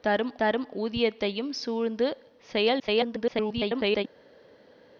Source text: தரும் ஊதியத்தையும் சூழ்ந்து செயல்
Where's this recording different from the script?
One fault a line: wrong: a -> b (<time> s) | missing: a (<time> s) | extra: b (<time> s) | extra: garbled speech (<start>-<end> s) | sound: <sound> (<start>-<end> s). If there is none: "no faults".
extra: தரும் (0.4 s)
extra: garbled speech (2.8-4.0 s)